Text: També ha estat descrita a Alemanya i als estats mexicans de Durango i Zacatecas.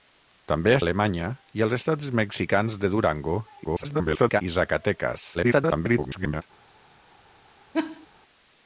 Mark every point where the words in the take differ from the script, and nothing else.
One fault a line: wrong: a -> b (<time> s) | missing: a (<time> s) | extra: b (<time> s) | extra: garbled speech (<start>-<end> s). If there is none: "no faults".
missing: estat descrita a (0.8 s)
extra: garbled speech (3.6-4.4 s)
extra: garbled speech (5.3-6.4 s)